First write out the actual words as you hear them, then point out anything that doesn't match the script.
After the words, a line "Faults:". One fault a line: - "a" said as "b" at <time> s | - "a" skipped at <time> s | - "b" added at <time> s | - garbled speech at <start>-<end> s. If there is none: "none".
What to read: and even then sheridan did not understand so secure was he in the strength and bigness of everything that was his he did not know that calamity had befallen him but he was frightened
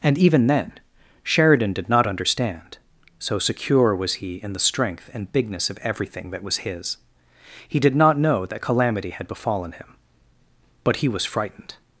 and even then sheridan did not understand so secure was he in the strength and bigness of everything that was his he did not know that calamity had befallen him but he was frightened
Faults:
none